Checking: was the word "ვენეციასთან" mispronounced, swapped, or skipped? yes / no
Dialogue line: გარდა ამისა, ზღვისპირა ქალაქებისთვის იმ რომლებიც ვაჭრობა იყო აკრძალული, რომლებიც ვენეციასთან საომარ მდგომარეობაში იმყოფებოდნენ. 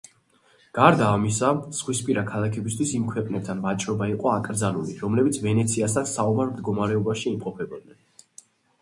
no